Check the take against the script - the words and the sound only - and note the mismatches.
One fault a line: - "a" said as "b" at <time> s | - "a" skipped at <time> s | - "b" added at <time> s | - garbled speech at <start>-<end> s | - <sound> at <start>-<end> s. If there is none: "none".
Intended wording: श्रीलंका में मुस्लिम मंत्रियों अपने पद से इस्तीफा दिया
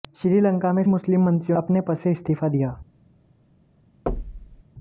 - thud at 4.1-4.6 s